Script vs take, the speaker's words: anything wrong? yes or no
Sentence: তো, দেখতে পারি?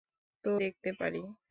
no